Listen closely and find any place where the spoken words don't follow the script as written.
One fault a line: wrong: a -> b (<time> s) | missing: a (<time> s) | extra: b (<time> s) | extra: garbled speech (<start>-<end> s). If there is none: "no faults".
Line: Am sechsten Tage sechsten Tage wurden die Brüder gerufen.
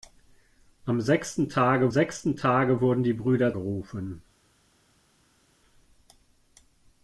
no faults